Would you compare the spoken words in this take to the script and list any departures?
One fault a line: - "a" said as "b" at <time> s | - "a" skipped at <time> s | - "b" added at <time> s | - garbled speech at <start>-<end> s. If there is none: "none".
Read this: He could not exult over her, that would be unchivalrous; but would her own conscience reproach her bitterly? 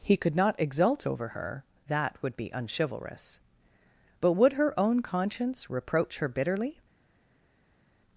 none